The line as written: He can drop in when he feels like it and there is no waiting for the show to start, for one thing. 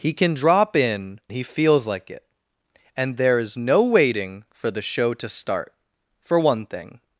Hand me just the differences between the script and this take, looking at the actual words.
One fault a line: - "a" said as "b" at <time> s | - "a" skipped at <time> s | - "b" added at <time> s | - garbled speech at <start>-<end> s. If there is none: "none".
- "when" skipped at 1.2 s